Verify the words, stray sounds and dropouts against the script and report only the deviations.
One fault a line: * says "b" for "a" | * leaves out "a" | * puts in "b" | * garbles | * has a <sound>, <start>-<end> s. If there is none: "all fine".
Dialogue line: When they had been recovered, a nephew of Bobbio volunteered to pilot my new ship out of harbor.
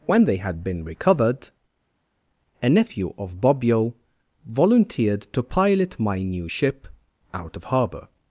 all fine